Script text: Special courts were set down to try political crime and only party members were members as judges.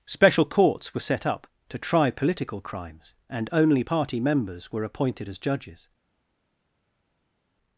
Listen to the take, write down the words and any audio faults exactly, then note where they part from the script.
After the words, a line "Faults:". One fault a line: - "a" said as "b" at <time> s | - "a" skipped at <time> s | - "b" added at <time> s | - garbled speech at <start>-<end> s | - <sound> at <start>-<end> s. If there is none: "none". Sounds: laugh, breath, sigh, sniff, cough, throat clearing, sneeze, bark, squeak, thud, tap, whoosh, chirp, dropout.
Special courts were set up to try political crimes and only party members were appointed as judges.
Faults:
- "down" said as "up" at 1.3 s
- "crime" said as "crimes" at 2.6 s
- "members" said as "appointed" at 4.8 s